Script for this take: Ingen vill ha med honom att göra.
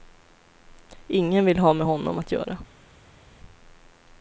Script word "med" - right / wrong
right